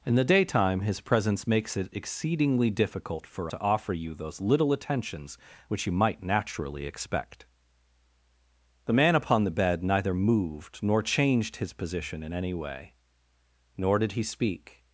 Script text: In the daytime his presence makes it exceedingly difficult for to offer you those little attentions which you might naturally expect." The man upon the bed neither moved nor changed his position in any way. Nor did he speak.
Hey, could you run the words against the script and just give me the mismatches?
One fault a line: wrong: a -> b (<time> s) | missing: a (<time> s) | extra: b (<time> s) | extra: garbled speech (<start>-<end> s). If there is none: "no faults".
no faults